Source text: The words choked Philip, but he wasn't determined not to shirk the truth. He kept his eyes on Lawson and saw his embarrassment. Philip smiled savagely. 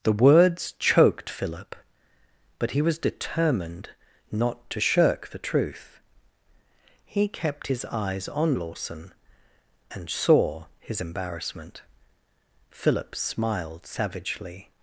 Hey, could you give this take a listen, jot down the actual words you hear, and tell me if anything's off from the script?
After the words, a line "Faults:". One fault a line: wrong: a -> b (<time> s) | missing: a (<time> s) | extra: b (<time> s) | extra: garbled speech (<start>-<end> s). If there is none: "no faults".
The words choked Philip, but he was determined not to shirk the truth. He kept his eyes on Lawson and saw his embarrassment. Philip smiled savagely.
Faults:
wrong: wasn't -> was (2.8 s)